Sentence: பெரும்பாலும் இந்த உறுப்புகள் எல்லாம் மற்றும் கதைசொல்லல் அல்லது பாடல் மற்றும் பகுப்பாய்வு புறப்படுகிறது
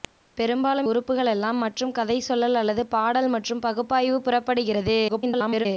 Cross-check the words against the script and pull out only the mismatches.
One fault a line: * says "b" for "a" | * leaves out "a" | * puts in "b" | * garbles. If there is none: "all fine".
* leaves out "இந்த"
* garbles